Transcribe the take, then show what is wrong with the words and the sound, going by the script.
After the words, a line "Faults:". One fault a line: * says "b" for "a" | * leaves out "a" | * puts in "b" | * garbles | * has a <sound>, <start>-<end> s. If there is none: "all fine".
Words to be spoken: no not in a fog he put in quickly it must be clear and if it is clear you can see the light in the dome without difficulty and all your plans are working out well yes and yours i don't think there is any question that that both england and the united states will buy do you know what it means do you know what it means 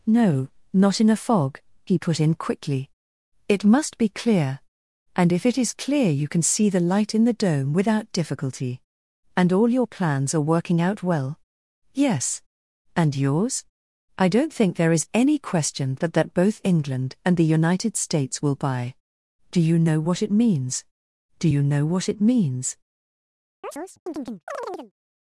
no not in a fog he put in quickly it must be clear and if it is clear you can see the light in the dome without difficulty and all your plans are working out well yes and yours i don't think there is any question that that both england and the united states will buy do you know what it means do you know what it means
Faults:
* has a chirp, 23.6-24.9 s